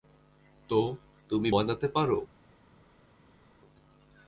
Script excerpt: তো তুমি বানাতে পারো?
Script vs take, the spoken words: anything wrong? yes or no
no